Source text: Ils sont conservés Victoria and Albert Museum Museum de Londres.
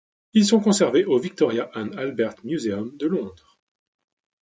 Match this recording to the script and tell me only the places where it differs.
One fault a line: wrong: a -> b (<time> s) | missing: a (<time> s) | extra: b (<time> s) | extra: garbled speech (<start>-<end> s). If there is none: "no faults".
extra: au (1.0 s)
missing: Museum (3.0 s)